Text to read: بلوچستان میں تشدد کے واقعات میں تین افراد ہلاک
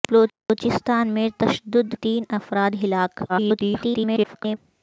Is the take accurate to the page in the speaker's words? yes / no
no